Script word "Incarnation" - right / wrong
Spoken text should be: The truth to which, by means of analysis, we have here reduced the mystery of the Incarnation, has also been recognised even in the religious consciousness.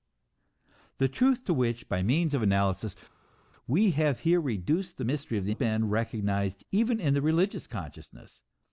wrong